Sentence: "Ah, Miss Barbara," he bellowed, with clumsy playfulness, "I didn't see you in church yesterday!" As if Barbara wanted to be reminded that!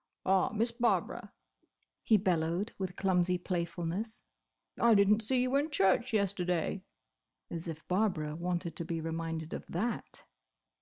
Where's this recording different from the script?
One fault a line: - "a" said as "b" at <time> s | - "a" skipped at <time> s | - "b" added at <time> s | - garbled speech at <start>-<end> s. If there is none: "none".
- "of" added at 9.5 s